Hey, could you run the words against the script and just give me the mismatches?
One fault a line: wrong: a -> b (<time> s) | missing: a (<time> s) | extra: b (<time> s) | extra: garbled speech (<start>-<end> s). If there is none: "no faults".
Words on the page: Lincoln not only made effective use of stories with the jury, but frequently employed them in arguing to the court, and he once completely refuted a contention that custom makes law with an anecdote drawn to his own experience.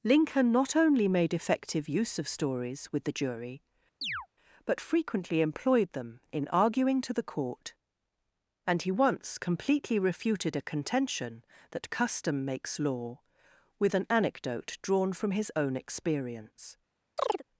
wrong: to -> from (15.1 s)